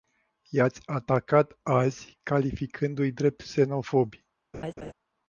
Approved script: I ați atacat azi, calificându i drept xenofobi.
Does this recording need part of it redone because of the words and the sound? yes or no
yes